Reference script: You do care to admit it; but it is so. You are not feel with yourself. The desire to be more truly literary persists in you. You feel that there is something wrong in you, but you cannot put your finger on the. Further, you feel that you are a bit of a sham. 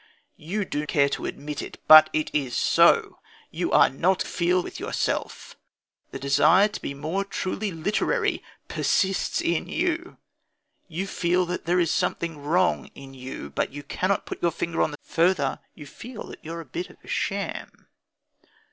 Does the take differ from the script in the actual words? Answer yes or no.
no